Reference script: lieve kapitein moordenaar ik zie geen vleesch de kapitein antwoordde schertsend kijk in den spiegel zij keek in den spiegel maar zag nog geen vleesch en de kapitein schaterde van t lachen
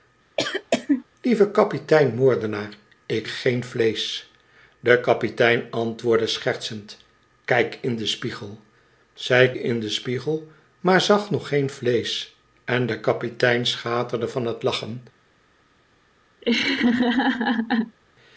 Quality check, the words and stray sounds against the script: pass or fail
fail